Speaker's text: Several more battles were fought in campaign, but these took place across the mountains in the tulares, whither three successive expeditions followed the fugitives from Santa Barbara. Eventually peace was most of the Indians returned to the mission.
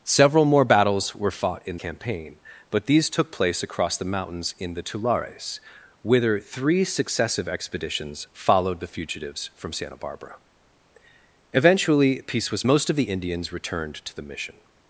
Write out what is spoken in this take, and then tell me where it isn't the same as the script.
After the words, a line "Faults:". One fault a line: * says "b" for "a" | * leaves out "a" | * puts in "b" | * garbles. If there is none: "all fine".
Several more battles were fought in campaign, but these took place across the mountains in the tulares, whither three successive expeditions followed the fugitives from Santa Barbara. Eventually peace was most of the Indians returned to the mission.
Faults:
all fine